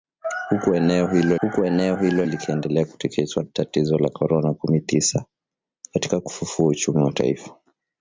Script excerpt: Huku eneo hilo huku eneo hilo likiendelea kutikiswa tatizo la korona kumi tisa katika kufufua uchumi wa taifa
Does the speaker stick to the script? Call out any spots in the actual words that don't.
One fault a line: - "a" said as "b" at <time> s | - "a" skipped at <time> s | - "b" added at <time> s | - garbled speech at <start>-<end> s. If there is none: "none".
none